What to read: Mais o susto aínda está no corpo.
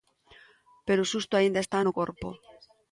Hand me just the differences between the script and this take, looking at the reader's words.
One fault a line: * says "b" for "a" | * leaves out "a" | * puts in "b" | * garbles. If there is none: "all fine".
* says "Pero" for "Mais"